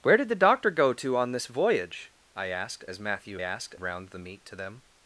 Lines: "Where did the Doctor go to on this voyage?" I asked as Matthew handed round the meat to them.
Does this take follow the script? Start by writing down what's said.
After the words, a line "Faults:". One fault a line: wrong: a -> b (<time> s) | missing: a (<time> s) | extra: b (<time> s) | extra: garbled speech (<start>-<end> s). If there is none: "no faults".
"Where did the Doctor go to on this voyage?" I asked as Matthew asked round the meat to them.
Faults:
wrong: handed -> asked (3.4 s)